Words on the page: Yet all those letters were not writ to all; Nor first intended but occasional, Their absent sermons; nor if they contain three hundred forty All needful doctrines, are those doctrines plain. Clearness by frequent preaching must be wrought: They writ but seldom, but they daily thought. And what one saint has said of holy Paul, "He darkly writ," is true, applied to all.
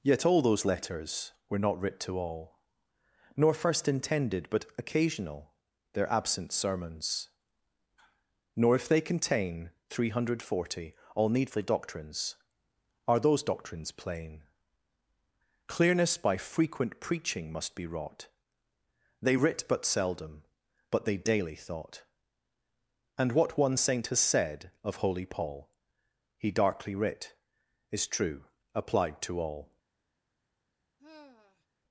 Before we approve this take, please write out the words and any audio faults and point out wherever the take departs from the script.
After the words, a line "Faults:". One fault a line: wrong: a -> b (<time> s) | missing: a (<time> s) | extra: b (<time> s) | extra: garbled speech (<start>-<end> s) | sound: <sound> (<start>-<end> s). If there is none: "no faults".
Yet all those letters were not writ to all; Nor first intended but occasional, Their absent sermons; nor if they contain three hundred forty All needful doctrines, are those doctrines plain. Clearness by frequent preaching must be wrought: They writ but seldom, but they daily thought. And what one saint has said of holy Paul, "He darkly writ," is true, applied to all.
Faults:
sound: sigh (31.0-31.7 s)